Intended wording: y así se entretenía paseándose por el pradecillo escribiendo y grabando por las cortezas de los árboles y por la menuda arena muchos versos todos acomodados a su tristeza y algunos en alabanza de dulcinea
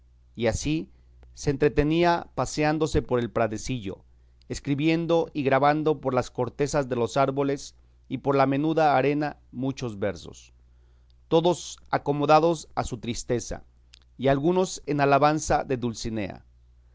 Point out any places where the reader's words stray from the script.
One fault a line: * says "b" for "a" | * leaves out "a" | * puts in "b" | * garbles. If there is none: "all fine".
all fine